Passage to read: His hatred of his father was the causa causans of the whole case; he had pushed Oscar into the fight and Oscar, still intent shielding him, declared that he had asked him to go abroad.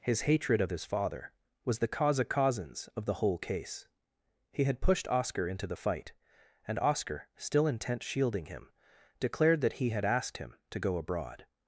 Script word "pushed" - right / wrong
right